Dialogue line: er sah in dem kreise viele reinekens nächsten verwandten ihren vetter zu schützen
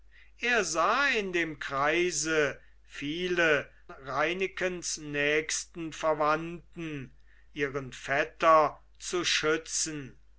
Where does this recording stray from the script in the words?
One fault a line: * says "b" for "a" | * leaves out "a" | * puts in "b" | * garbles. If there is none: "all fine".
all fine